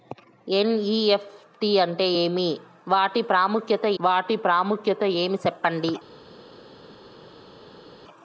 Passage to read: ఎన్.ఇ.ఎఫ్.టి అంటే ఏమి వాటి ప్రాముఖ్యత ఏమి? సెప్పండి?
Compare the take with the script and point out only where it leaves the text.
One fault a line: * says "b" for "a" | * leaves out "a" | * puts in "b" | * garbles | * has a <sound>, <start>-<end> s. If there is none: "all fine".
* puts in "వాటి ప్రాముఖ్యత"